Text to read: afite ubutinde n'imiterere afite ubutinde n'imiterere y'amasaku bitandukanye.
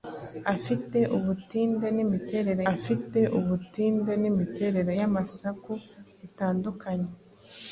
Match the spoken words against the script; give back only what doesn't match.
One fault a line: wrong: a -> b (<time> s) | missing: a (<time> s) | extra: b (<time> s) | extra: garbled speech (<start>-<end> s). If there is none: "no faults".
no faults